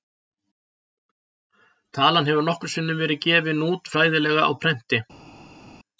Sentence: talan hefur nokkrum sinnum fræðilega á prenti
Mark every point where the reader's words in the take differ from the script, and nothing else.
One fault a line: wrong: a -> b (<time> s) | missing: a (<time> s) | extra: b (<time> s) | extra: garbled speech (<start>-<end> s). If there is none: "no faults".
extra: verið gefin út (3.0 s)